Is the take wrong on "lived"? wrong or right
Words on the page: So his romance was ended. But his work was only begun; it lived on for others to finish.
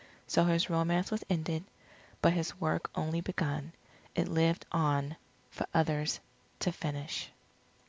right